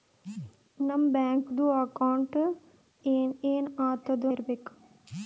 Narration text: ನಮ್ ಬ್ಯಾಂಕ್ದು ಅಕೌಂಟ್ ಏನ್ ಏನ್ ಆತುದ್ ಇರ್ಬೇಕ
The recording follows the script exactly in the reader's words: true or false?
true